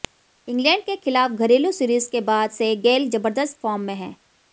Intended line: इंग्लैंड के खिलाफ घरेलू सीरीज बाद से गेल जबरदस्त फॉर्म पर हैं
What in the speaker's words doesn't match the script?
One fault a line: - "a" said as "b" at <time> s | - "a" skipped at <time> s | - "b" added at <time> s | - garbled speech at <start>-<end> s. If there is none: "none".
- "के" added at 2.1 s
- "पर" said as "में" at 3.8 s